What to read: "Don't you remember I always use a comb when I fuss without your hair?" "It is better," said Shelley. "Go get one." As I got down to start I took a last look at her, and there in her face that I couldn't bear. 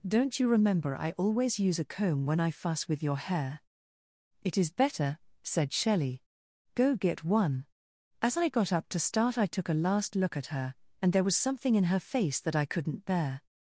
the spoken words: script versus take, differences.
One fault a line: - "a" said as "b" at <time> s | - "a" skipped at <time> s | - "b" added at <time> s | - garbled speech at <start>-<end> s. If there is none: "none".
- "without" said as "with" at 2.9 s
- "down" said as "up" at 8.7 s
- "was something" added at 11.2 s